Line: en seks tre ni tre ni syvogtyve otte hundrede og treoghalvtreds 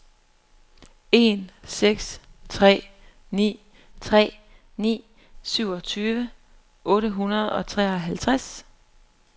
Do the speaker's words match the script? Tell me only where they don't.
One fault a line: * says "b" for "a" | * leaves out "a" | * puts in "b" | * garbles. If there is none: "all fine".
all fine